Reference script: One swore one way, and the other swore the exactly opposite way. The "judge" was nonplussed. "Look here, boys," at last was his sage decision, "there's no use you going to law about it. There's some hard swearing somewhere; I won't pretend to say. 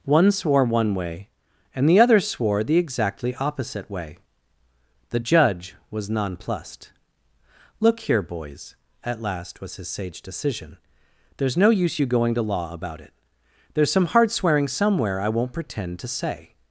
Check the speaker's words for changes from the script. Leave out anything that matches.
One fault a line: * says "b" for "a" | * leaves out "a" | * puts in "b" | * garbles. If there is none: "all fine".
all fine